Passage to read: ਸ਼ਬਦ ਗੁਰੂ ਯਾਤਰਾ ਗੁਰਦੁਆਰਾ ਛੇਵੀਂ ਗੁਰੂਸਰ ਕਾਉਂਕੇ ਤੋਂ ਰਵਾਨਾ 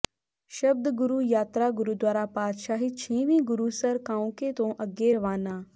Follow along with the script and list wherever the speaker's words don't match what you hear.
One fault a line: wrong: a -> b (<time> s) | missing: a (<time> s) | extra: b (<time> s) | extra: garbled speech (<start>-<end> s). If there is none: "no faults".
extra: ਪਾਤਸ਼ਾਹੀ (2.3 s)
extra: ਅੱਗੇ (4.8 s)